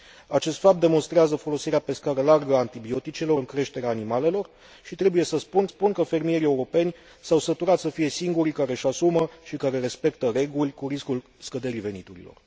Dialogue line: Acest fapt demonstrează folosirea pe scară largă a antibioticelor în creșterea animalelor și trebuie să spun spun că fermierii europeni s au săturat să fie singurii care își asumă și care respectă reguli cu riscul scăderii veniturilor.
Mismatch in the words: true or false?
false